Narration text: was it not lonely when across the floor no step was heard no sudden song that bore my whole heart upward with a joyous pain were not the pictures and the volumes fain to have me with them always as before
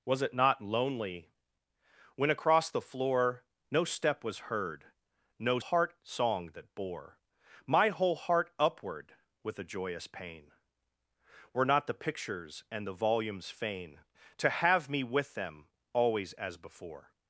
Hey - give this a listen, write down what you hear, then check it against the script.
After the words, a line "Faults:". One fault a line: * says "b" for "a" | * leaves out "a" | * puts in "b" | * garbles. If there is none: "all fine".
was it not lonely when across the floor no step was heard no heart song that bore my whole heart upward with a joyous pain were not the pictures and the volumes fain to have me with them always as before
Faults:
* says "heart" for "sudden"